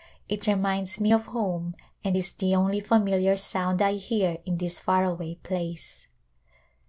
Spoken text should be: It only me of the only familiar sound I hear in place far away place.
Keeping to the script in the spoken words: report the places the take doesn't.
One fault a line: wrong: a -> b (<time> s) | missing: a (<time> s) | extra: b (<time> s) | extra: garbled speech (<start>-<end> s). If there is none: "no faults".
wrong: only -> reminds (0.5 s)
extra: home and is (1.2 s)
wrong: place -> this (4.6 s)